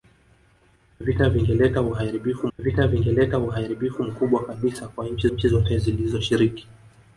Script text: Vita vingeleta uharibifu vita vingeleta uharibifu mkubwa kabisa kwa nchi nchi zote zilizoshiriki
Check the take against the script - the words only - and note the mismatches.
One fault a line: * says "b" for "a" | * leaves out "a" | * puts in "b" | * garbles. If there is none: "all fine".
all fine